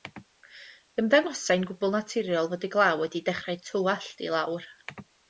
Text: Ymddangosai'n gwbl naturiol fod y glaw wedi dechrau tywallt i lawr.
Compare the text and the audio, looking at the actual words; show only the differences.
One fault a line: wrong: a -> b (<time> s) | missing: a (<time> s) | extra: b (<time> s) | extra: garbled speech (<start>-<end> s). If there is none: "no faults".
no faults